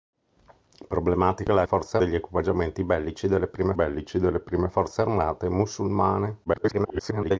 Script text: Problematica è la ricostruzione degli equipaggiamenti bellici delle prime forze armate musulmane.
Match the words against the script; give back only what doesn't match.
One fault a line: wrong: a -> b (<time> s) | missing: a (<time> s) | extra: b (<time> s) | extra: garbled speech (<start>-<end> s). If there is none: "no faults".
wrong: ricostruzione -> forze (1.6 s)
extra: bellici delle prime (3.7 s)
extra: garbled speech (6.5-7.4 s)